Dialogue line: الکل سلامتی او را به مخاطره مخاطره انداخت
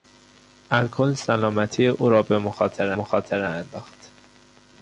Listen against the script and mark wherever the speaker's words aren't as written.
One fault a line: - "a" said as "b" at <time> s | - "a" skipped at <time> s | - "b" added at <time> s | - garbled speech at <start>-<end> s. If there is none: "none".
none